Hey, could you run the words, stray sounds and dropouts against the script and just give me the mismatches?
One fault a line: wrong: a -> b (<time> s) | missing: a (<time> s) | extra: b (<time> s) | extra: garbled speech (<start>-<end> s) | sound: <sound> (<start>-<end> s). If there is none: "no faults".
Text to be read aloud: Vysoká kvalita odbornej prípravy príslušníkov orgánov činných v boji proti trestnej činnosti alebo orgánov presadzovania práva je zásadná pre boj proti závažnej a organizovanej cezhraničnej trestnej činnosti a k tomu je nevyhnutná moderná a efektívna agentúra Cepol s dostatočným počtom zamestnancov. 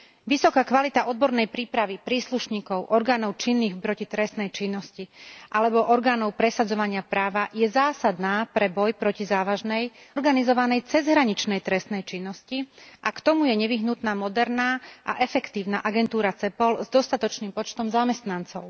missing: boji (3.8 s)
missing: a (9.9 s)